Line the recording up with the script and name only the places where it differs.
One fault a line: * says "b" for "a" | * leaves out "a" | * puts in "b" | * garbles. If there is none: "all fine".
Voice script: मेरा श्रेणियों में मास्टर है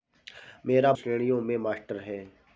all fine